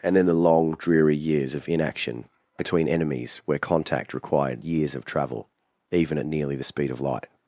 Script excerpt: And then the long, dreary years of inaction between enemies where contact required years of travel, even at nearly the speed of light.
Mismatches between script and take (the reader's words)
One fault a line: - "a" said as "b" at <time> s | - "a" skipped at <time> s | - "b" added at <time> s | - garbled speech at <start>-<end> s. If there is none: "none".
none